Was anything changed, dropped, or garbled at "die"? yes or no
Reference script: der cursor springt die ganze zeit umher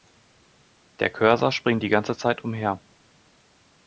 no